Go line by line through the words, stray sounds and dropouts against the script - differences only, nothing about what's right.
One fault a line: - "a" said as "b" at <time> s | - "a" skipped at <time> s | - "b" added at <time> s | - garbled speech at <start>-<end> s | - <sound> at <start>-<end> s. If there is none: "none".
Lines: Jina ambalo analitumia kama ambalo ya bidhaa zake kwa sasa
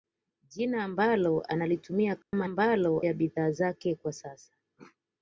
- dropout at 2.2-2.3 s